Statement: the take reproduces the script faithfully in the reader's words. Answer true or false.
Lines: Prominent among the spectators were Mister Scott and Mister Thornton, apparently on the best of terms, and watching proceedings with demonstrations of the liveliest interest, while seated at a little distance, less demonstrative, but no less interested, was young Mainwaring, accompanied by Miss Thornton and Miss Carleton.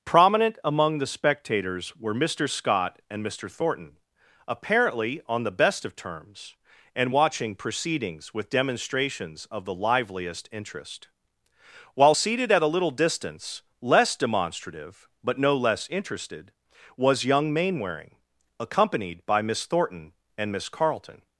true